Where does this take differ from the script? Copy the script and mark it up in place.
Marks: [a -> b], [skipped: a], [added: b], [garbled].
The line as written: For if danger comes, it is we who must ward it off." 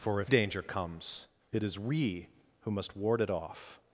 For if danger comes, it is we who must ward it off."